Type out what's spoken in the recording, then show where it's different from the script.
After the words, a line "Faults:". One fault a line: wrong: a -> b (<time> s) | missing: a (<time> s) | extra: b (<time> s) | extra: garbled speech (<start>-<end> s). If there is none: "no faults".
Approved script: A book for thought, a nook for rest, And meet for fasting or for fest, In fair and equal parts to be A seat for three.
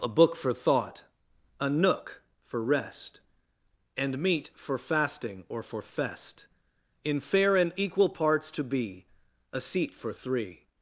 A book for thought, a nook for rest, And meet for fasting or for fest, In fair and equal parts to be A seat for three.
Faults:
no faults